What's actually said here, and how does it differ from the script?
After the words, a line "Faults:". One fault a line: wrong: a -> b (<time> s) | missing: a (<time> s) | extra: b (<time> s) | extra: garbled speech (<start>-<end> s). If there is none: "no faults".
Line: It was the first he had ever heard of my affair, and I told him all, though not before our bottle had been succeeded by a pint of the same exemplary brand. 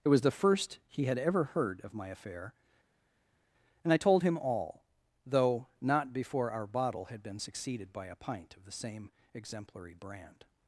It was the first he had ever heard of my affair, and I told him all, though not before our bottle had been succeeded by a pint of the same exemplary brand.
Faults:
no faults